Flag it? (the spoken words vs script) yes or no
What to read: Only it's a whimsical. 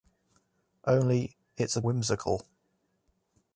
no